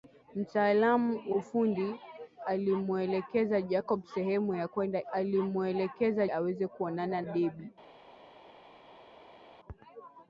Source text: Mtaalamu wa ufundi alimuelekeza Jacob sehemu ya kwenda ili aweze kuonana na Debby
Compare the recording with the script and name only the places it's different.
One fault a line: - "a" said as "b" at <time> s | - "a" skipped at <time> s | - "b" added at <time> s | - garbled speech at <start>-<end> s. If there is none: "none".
- "wa" skipped at 1.3 s
- "ili" said as "alimuelekeza" at 5.1 s
- "na" skipped at 7.2 s